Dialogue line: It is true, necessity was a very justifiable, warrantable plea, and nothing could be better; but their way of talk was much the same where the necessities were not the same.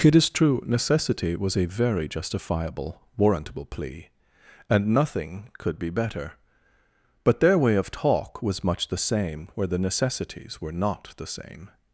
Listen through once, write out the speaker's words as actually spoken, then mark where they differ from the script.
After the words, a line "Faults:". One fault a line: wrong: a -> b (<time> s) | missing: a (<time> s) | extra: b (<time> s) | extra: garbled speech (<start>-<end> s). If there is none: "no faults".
It is true, necessity was a very justifiable, warrantable plea, and nothing could be better; but their way of talk was much the same where the necessities were not the same.
Faults:
no faults